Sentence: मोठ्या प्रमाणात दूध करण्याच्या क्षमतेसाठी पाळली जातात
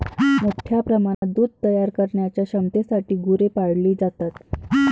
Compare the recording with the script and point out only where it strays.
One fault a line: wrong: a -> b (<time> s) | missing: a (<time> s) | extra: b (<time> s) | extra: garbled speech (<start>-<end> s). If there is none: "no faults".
extra: तयार (1.6 s)
extra: गुरे (3.2 s)